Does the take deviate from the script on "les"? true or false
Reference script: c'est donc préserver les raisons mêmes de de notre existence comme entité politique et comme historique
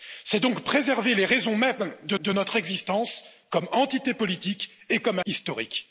false